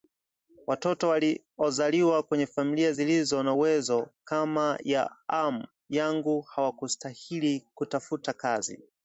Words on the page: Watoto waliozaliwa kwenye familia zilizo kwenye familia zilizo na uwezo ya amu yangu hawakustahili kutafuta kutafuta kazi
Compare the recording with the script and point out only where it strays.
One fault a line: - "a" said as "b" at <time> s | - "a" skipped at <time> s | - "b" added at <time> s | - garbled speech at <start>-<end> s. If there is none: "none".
- "kwenye familia zilizo" skipped at 3.4 s
- "kama" added at 4.2 s
- "kutafuta" skipped at 8.3 s